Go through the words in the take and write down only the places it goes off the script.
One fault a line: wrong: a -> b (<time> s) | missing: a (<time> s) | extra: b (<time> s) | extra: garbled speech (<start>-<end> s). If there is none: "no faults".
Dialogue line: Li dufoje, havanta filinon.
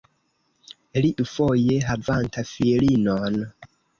no faults